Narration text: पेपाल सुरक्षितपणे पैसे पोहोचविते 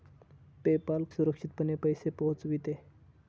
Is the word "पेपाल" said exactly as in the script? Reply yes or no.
yes